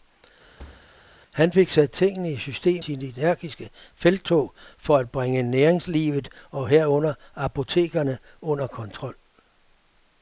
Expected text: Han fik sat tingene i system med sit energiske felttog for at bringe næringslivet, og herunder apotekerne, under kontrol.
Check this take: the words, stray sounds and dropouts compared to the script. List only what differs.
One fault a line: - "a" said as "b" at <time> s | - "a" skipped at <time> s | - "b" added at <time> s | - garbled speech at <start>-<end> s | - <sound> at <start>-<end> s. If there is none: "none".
- thud at 0.6-0.9 s
- "med" skipped at 2.8 s